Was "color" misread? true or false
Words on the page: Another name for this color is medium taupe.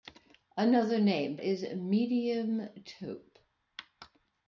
true